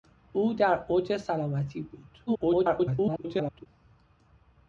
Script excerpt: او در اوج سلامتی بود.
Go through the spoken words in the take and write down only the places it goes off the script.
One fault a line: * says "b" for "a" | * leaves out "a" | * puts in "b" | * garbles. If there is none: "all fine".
* garbles